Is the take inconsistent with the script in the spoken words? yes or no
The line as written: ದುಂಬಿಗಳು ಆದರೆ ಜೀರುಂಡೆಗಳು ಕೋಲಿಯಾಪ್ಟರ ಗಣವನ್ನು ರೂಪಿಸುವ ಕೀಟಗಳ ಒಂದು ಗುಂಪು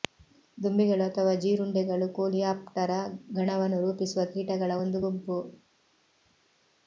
yes